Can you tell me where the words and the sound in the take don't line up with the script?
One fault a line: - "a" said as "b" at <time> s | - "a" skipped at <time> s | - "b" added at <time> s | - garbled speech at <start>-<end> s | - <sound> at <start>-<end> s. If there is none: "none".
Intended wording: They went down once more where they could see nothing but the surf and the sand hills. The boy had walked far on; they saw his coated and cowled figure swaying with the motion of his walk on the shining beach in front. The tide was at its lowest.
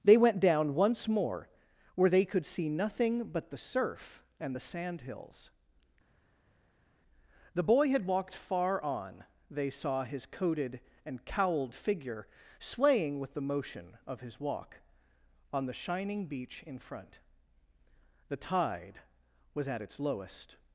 none